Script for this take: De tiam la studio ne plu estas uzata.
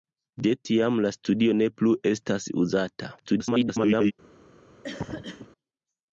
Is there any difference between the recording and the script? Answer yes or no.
yes